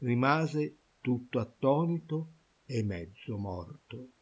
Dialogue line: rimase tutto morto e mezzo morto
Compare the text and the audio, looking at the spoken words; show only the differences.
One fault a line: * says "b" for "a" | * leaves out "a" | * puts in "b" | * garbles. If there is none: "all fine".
* says "attonito" for "morto"